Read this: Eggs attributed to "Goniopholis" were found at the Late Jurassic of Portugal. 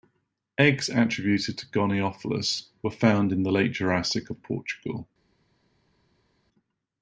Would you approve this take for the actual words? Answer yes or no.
no